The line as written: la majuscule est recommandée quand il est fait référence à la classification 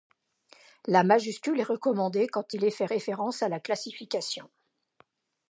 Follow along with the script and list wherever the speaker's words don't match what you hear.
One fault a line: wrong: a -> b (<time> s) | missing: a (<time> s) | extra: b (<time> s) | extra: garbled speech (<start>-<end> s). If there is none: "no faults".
no faults